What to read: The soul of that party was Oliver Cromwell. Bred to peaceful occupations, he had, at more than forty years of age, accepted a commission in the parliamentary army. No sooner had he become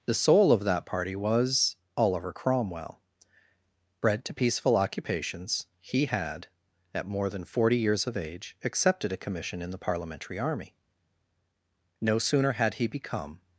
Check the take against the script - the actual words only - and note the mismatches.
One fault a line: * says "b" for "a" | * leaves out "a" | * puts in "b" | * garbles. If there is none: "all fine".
all fine